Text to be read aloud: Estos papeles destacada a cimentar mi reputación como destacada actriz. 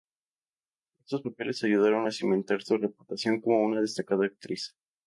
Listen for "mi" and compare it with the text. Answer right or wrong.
wrong